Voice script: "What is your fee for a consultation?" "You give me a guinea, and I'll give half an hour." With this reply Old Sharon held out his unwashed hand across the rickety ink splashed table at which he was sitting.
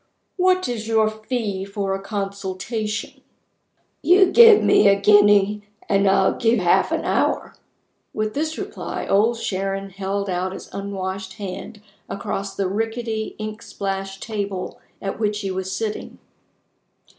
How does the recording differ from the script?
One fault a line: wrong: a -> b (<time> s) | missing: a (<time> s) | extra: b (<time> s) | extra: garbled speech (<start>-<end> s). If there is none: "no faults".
no faults